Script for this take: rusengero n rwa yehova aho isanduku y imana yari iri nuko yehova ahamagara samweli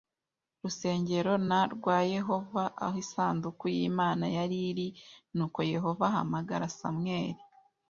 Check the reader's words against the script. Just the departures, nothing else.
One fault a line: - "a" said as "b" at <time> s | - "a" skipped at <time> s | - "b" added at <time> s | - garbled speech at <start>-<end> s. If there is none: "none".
none